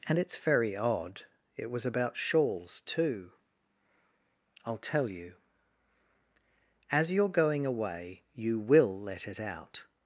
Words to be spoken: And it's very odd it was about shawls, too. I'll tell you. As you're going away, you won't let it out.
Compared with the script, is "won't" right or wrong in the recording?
wrong